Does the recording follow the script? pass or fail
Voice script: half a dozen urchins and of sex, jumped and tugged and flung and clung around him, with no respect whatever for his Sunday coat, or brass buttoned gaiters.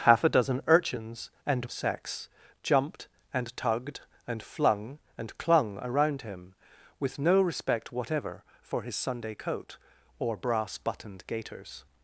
pass